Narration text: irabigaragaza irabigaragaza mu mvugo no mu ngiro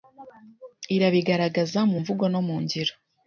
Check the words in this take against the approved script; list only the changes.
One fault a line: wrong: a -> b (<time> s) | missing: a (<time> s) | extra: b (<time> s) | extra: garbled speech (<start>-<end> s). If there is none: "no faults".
missing: irabigaragaza (1.8 s)